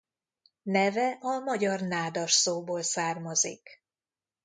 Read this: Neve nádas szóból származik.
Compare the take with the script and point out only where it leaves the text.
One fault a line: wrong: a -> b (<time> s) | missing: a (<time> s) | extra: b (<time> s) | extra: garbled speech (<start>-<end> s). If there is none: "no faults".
extra: a magyar (1.2 s)